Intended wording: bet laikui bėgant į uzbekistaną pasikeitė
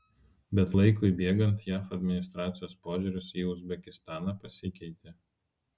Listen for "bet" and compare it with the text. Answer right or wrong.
right